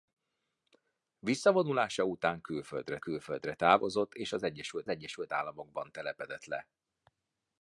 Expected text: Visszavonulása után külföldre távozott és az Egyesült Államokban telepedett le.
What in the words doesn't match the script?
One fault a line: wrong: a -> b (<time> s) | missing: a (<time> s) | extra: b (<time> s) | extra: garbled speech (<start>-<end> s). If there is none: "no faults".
extra: külföldre (3.0 s)
extra: Egyesült (4.9 s)